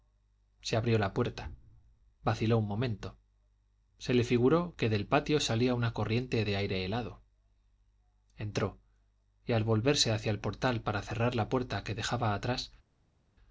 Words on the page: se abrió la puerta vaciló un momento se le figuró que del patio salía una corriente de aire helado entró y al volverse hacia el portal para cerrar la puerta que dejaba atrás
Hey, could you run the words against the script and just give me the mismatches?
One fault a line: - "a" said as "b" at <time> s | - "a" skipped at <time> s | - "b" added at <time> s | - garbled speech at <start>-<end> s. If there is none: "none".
none